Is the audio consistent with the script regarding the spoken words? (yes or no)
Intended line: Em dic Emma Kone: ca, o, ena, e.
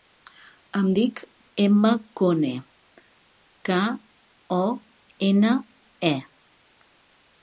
yes